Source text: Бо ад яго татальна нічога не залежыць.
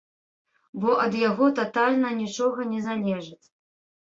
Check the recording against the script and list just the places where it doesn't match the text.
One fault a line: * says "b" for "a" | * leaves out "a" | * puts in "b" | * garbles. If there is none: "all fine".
all fine